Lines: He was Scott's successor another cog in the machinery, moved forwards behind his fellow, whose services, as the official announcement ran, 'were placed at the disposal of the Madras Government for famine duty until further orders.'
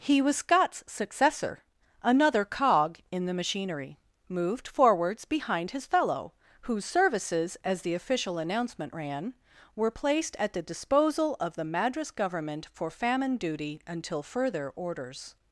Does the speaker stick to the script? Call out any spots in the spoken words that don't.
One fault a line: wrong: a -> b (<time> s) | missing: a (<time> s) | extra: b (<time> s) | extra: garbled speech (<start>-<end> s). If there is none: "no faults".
no faults